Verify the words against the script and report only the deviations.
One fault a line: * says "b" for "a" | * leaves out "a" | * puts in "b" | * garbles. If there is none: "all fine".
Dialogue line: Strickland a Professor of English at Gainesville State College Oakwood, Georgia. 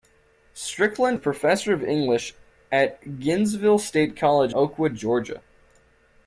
all fine